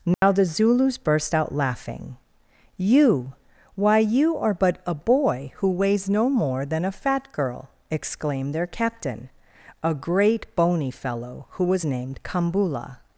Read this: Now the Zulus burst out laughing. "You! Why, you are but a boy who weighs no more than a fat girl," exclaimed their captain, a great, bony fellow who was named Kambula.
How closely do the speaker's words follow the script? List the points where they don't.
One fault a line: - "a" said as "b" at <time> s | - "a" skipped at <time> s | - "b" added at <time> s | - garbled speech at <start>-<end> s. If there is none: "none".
none